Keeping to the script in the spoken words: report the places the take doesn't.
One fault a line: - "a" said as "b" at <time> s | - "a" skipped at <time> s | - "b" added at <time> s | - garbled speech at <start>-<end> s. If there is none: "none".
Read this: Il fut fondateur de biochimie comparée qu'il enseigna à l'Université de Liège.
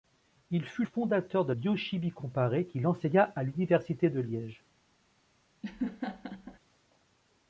none